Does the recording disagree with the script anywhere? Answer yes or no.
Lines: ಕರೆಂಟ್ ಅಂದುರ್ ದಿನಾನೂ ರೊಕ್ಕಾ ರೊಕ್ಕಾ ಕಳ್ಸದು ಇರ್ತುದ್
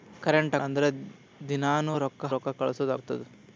no